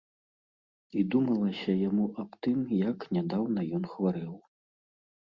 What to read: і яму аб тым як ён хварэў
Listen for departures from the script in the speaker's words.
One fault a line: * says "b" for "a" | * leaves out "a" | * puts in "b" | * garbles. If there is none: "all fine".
* puts in "думалася"
* puts in "нядаўна"